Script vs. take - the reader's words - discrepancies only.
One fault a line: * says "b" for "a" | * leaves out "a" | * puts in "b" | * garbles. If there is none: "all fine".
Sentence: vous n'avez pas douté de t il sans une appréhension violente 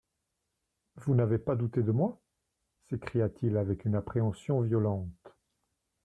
* puts in "moi s'écria"
* says "avec" for "sans"